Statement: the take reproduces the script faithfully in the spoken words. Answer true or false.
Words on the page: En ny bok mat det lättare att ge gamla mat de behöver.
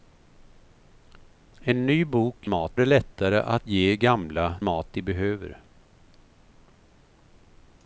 true